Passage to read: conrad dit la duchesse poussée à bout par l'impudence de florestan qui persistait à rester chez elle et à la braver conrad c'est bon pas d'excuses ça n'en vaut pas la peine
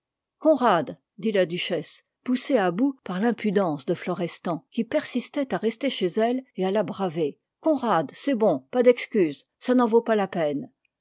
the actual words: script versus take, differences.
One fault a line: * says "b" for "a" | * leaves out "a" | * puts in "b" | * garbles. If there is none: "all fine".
all fine